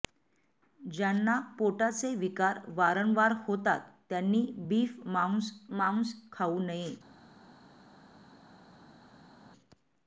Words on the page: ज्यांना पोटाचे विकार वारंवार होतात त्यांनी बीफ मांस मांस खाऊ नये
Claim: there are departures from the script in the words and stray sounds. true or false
false